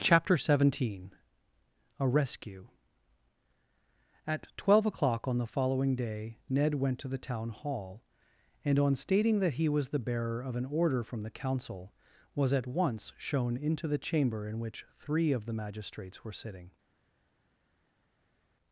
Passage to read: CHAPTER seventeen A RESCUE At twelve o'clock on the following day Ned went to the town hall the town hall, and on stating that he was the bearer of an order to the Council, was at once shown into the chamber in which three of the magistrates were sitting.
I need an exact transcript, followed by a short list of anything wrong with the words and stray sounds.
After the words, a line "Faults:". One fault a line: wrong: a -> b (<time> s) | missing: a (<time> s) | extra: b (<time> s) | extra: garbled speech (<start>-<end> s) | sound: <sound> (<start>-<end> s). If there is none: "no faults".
CHAPTER seventeen A RESCUE At twelve o'clock on the following day Ned went to the town hall, and on stating that he was the bearer of an order from the Council, was at once shown into the chamber in which three of the magistrates were sitting.
Faults:
missing: the town hall (8.0 s)
wrong: to -> from (11.0 s)